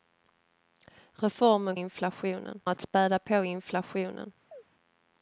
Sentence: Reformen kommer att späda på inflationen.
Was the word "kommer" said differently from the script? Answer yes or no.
yes